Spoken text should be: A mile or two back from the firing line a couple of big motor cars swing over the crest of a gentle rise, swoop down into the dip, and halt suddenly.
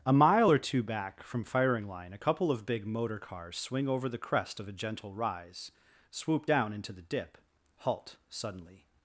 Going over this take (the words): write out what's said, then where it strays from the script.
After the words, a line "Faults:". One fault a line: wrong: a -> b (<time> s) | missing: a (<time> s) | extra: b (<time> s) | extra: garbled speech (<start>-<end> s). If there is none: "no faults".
A mile or two back from firing line a couple of big motor cars swing over the crest of a gentle rise, swoop down into the dip, halt suddenly.
Faults:
missing: the (1.4 s)
missing: and (7.4 s)